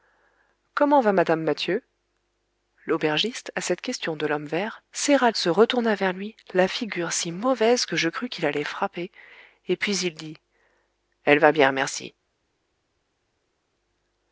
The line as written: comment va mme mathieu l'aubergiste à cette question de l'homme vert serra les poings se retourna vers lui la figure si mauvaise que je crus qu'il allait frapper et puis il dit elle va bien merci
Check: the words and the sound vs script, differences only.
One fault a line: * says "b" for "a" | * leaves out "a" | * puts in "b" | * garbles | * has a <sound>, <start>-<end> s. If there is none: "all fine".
* leaves out "les poings"